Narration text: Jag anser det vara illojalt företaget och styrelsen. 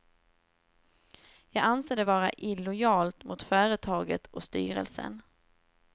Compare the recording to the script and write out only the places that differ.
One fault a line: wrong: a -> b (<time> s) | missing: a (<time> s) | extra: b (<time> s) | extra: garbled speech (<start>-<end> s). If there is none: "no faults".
extra: mot (3.2 s)